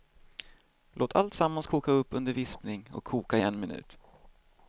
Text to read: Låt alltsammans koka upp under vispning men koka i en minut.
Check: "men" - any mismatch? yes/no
yes